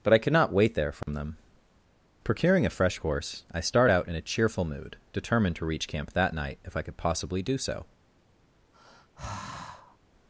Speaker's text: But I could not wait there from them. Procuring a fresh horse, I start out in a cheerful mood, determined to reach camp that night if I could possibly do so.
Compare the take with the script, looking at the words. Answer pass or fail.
pass